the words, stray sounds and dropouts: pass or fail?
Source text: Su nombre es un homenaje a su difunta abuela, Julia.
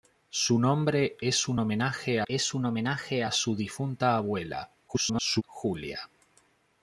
fail